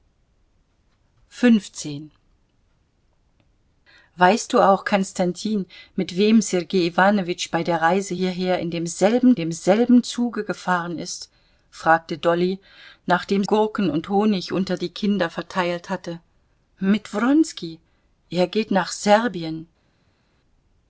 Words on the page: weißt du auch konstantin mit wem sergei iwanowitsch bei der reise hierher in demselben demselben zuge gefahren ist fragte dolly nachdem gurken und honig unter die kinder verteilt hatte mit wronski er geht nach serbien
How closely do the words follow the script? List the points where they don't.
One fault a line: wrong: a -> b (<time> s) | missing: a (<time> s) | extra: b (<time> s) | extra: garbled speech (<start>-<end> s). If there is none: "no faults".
no faults